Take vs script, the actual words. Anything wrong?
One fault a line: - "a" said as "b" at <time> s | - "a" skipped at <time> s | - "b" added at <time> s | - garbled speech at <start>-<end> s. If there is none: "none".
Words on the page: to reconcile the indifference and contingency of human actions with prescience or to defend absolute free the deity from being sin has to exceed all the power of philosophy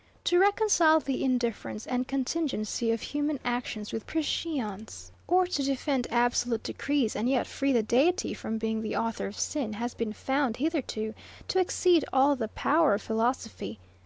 - "decrees and yet" added at 6.6 s
- "the author of" added at 8.8 s
- "been found hitherto" added at 9.9 s